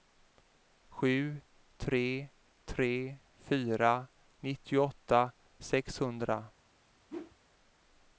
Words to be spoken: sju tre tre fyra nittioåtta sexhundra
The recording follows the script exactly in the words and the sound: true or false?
false